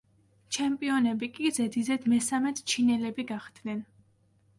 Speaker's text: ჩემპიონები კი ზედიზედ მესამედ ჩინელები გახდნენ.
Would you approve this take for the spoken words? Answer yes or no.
yes